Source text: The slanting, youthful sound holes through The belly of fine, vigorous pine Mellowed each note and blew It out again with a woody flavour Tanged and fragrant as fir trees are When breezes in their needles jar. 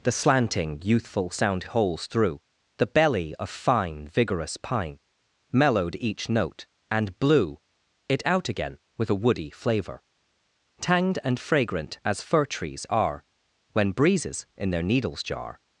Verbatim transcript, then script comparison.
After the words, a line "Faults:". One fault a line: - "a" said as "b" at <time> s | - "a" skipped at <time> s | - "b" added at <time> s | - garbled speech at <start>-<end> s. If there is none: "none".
The slanting, youthful sound holes through The belly of fine, vigorous pine Mellowed each note and blew It out again with a woody flavour Tanged and fragrant as fir trees are When breezes in their needles jar.
Faults:
none